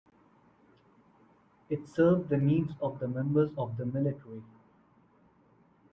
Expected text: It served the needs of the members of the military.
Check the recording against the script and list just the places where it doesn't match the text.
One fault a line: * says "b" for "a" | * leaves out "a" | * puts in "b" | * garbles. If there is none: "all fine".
all fine